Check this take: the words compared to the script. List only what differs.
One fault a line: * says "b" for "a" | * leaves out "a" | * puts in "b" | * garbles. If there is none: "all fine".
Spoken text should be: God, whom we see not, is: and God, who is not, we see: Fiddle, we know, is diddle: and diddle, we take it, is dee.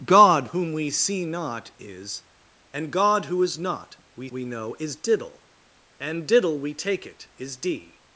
* leaves out "see Fiddle"